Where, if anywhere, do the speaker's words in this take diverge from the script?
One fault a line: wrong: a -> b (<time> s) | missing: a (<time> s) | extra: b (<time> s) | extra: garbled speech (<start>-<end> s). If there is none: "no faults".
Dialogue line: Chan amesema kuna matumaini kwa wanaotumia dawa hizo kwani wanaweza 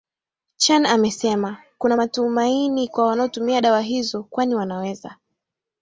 no faults